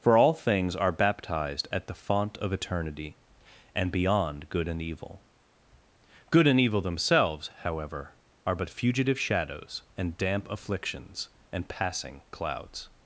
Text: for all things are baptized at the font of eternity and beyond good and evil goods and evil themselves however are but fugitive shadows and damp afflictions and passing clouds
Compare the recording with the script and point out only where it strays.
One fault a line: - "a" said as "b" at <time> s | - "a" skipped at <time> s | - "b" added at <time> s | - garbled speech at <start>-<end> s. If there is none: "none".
- "goods" said as "good" at 6.3 s